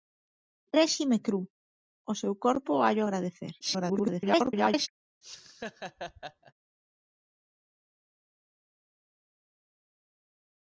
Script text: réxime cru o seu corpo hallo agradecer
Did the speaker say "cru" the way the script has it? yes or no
yes